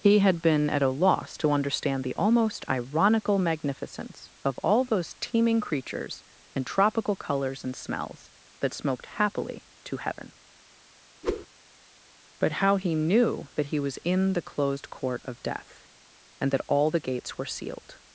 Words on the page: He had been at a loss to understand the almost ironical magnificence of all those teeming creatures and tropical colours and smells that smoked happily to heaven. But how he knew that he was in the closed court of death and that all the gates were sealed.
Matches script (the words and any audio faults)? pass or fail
fail